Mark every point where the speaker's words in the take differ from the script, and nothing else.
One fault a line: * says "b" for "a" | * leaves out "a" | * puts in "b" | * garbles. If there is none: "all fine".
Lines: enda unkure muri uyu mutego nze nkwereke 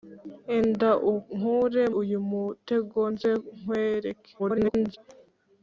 * leaves out "muri"
* garbles